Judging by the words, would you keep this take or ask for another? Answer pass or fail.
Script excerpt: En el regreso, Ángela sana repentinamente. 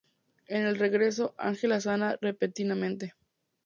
pass